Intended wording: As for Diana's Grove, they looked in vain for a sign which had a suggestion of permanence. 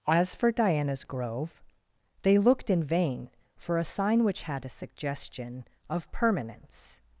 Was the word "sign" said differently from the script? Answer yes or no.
no